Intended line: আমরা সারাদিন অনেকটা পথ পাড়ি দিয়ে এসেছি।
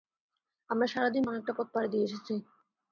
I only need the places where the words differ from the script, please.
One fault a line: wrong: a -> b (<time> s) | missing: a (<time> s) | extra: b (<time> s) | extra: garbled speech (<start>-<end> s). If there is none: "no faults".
no faults